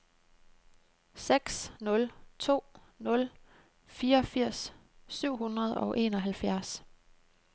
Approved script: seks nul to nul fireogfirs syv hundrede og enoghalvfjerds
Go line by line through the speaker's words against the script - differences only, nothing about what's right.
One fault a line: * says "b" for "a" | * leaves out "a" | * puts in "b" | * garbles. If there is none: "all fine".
all fine